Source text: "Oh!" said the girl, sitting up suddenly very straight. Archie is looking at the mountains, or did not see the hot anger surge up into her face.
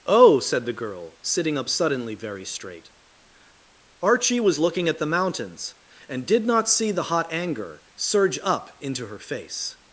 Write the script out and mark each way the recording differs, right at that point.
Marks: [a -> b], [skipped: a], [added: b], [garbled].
"Oh!" said the girl, sitting up suddenly very straight. Archie [is -> was] looking at the mountains, [or -> and] did not see the hot anger surge up into her face.